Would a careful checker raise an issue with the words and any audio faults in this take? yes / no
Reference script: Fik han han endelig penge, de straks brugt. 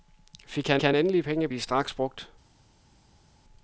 no